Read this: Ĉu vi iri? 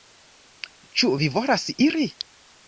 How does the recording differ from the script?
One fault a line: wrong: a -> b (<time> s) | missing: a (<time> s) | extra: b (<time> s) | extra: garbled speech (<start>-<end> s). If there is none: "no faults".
extra: volas (1.4 s)